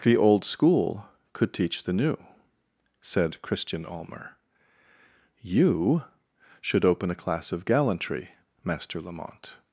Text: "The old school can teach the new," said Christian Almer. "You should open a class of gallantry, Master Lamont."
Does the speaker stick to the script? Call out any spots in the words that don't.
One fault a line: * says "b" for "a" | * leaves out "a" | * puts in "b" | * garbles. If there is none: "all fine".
* says "could" for "can"